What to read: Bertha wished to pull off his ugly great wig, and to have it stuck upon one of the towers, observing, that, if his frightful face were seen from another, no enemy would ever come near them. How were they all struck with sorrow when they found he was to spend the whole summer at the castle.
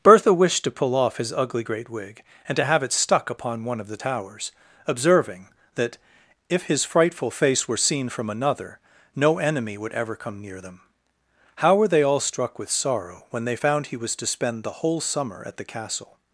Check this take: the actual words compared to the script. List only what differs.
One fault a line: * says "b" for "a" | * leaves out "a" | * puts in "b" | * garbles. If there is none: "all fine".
all fine